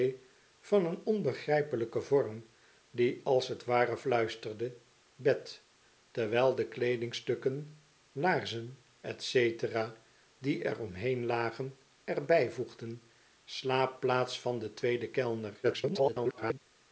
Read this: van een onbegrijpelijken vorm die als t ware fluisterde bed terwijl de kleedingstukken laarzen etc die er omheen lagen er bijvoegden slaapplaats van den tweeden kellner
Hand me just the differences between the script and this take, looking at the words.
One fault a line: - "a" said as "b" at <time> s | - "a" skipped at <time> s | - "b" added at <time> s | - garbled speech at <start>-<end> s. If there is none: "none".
- garbled speech at 15.6-16.6 s